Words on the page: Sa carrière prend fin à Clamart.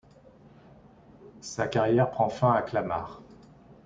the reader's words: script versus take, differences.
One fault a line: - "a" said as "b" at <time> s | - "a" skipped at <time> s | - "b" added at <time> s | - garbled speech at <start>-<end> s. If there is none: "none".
none